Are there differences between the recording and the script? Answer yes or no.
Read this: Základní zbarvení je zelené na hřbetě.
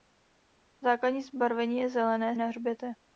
no